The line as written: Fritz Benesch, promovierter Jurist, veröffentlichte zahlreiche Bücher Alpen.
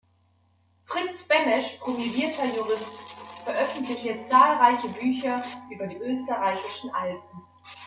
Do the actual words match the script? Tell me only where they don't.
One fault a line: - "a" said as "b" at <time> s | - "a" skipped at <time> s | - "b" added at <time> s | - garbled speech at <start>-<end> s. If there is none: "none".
- "über die österreichischen" added at 5.7 s